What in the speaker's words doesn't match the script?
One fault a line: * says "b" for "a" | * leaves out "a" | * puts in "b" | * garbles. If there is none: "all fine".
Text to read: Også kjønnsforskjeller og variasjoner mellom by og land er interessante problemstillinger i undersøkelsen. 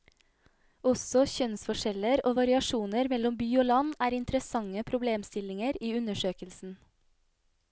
all fine